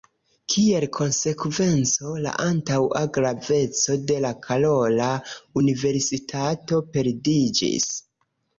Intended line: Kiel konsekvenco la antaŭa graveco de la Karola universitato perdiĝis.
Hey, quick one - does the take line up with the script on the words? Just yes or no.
yes